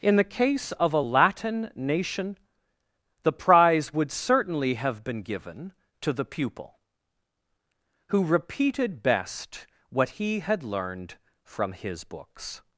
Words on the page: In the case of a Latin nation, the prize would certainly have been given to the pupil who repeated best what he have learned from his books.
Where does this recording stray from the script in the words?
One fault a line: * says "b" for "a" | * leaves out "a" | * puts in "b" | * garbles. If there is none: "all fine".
* says "had" for "have"